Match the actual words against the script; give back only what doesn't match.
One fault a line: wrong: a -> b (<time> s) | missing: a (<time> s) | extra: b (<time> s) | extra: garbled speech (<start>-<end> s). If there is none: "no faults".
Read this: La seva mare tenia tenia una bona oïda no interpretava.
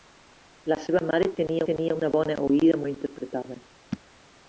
no faults